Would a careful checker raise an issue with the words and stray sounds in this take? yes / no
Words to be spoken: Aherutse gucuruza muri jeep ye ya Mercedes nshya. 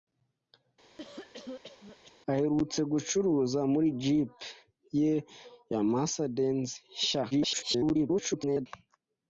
yes